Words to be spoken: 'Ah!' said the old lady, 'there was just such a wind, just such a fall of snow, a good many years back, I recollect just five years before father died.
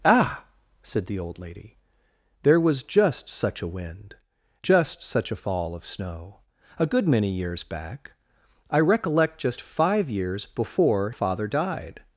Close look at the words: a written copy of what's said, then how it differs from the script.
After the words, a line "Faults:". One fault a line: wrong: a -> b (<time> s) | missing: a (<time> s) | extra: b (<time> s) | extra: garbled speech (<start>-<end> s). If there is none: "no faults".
'Ah!' said the old lady, 'there was just such a wind, just such a fall of snow, a good many years back, I recollect just five years before father died.
Faults:
no faults